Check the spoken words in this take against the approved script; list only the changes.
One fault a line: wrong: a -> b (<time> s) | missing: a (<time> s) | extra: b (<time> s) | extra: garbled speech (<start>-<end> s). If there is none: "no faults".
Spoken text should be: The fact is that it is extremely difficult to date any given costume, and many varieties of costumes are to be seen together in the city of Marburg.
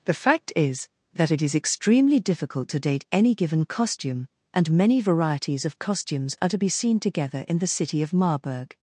no faults